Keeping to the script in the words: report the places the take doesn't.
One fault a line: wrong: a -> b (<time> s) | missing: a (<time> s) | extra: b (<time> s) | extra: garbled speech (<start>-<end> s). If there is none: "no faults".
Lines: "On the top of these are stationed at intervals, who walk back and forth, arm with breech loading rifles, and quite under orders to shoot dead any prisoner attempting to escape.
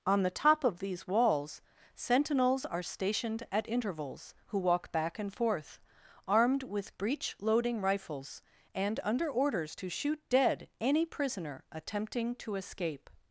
extra: walls sentinels (1.1 s)
wrong: arm -> armed (6.3 s)
missing: quite (9.0 s)